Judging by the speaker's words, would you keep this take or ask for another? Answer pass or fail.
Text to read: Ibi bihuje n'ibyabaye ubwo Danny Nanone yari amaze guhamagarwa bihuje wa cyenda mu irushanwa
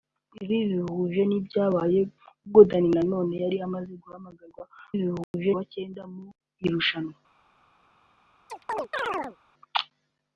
pass